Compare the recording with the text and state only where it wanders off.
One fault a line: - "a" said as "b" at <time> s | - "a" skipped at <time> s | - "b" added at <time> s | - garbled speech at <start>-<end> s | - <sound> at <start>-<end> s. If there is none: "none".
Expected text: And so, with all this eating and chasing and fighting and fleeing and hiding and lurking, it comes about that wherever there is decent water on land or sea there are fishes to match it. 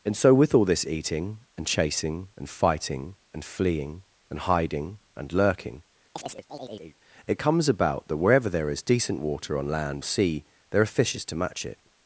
- chirp at 6.2-7.0 s
- "or" skipped at 10.0 s